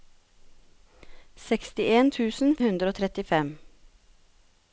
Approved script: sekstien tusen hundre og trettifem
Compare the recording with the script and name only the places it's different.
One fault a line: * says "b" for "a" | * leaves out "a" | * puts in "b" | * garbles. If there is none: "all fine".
all fine